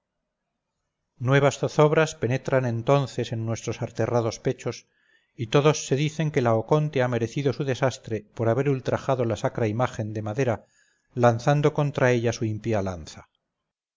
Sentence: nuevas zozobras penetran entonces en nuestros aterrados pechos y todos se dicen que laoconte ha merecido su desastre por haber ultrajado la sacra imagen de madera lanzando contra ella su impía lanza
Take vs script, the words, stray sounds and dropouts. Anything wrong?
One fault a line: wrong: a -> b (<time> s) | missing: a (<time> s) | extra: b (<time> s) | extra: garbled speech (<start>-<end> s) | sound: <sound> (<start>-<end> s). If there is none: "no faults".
no faults